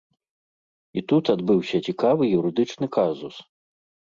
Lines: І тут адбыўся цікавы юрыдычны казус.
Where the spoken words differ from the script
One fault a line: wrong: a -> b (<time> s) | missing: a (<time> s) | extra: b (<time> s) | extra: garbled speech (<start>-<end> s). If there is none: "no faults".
no faults